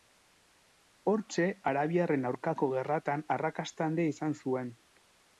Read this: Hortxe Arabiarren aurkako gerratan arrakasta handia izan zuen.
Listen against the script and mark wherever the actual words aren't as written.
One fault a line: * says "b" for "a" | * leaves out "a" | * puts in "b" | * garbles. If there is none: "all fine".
all fine